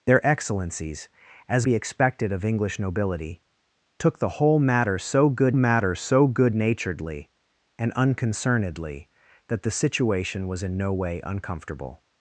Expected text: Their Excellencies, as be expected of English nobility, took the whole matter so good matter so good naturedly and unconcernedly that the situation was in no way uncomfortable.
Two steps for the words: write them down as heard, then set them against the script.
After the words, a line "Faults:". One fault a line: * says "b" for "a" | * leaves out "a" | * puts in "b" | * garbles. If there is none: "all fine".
Their Excellencies, as be expected of English nobility, took the whole matter so good matter so good naturedly and unconcernedly that the situation was in no way uncomfortable.
Faults:
all fine